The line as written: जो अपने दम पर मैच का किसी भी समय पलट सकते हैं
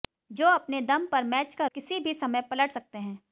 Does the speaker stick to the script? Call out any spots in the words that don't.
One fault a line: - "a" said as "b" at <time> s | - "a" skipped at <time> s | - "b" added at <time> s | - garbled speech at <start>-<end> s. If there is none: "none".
none